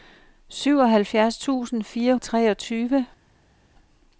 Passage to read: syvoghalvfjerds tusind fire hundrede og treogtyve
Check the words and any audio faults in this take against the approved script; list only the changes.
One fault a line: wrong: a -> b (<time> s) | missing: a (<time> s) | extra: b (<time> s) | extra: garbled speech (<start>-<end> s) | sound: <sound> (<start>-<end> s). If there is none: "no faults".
missing: hundrede (2.1 s)